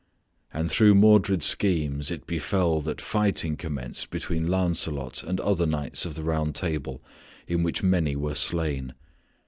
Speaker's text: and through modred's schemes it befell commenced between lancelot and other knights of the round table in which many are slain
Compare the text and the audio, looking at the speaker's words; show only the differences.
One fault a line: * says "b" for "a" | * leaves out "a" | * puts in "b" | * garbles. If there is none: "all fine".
* puts in "that fighting"
* says "were" for "are"